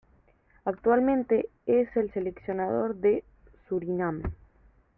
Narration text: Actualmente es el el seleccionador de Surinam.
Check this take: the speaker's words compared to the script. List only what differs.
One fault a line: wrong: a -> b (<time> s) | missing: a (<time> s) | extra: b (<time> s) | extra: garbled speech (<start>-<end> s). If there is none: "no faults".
missing: el (2.1 s)